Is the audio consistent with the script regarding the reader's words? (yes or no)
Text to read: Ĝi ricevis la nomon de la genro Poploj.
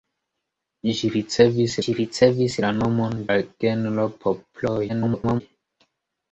no